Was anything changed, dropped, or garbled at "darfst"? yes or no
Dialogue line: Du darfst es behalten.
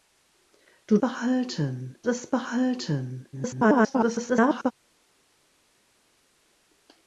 yes